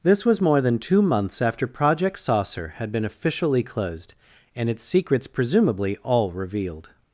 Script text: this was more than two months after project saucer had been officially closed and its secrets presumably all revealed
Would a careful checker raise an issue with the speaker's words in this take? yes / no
no